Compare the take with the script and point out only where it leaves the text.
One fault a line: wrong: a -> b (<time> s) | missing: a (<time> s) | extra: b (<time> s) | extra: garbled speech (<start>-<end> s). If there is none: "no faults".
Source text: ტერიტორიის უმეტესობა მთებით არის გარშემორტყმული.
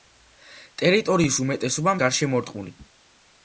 missing: მთებით არის (1.9 s)